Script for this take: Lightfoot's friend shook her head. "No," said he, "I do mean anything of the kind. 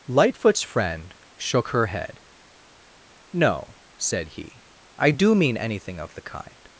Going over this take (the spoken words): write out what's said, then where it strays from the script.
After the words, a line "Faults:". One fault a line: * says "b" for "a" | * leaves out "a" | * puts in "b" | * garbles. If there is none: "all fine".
Lightfoot's friend shook her head. "No," said he, "I do mean anything of the kind.
Faults:
all fine